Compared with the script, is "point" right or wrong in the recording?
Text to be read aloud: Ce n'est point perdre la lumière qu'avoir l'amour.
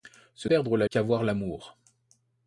wrong